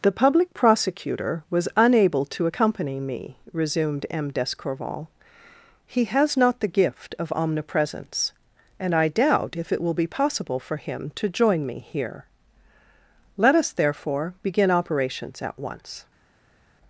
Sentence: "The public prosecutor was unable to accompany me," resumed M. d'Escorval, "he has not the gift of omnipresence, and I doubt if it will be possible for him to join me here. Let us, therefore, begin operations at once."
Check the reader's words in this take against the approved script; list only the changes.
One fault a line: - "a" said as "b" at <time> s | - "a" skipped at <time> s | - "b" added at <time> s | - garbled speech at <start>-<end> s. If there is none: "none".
none